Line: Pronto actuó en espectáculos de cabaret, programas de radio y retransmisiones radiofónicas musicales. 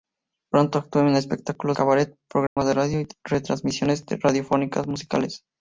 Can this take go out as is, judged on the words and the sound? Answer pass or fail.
fail